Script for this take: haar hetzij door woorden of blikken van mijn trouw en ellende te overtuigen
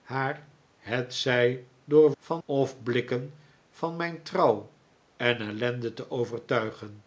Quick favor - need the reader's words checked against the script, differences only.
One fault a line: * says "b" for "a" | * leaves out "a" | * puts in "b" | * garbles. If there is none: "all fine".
* says "van" for "woorden"